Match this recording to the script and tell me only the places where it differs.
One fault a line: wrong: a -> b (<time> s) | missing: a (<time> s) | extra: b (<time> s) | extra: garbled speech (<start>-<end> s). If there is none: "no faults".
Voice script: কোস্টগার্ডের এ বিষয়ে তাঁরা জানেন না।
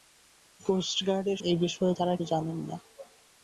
no faults